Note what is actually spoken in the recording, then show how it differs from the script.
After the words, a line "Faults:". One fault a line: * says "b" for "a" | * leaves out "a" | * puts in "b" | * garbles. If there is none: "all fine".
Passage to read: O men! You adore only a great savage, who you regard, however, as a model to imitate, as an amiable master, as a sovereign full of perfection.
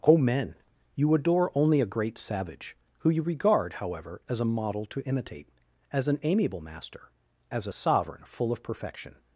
O men! You adore only a great savage, who you regard, however, as a model to imitate, as an amiable master, as a sovereign full of perfection.
Faults:
all fine